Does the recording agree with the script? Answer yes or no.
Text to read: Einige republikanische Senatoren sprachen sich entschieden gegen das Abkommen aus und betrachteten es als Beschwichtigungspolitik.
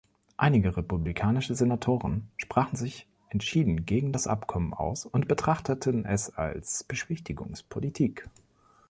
yes